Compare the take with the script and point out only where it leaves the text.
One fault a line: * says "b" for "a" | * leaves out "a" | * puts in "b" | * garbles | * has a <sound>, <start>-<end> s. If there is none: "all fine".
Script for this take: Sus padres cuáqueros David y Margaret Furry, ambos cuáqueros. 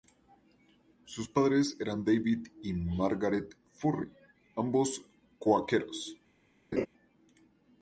* says "eran" for "cuáqueros"
* has a laugh, 6.7-6.9 s